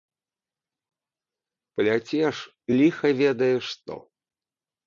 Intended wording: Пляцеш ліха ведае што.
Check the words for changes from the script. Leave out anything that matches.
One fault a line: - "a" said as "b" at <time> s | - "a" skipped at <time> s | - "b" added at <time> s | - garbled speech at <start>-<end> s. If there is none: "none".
none